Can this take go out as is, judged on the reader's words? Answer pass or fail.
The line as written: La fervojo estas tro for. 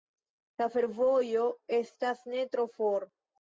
fail